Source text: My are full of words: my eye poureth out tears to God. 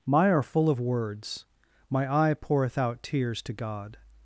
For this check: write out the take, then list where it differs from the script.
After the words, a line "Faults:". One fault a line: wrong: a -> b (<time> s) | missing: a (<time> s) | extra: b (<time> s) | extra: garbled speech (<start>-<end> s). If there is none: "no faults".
My are full of words: my eye poureth out tears to God.
Faults:
no faults